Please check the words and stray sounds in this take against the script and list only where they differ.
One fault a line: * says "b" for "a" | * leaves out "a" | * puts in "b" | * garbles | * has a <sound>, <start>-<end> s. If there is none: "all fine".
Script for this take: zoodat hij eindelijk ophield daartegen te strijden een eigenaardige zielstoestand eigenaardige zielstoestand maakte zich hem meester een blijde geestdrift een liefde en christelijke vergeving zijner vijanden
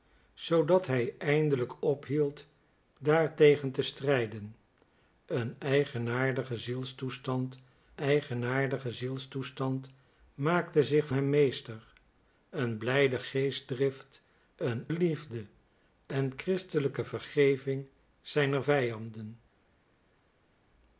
all fine